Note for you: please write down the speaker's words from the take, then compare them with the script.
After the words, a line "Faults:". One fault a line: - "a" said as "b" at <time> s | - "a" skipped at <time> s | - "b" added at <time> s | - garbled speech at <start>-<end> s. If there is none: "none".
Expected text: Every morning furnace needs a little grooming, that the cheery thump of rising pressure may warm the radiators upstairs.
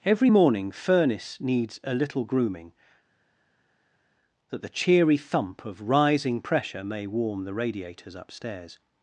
Every morning furnace needs a little grooming, that the cheery thump of rising pressure may warm the radiators upstairs.
Faults:
none